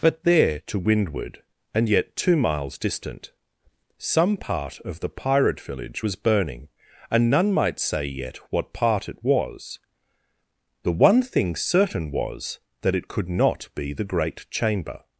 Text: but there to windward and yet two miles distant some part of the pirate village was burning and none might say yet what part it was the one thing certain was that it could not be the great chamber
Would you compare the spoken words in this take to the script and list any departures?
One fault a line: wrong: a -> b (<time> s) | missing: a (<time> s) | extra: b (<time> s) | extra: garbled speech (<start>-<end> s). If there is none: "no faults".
no faults